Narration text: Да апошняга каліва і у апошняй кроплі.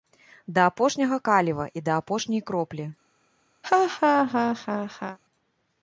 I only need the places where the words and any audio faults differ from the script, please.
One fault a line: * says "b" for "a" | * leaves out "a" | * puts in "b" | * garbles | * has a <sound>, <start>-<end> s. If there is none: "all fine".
* says "да" for "у"
* has a laugh, 3.6-5.2 s